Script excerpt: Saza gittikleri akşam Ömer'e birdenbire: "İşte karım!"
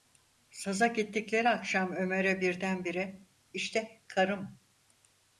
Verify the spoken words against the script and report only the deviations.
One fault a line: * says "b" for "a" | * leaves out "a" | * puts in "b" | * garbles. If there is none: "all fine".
all fine